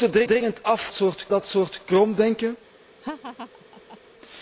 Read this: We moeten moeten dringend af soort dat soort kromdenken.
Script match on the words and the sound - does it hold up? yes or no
no